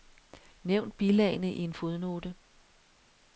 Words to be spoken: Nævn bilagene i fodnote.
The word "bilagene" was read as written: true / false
true